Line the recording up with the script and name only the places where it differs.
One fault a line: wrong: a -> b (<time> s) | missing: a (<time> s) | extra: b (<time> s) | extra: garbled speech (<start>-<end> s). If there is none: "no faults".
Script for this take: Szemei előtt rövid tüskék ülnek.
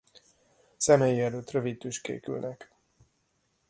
no faults